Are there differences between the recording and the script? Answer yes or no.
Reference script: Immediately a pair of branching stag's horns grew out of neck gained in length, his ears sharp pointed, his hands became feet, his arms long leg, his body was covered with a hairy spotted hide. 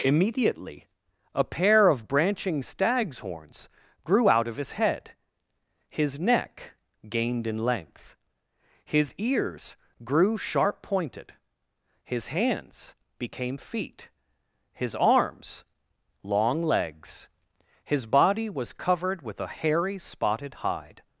yes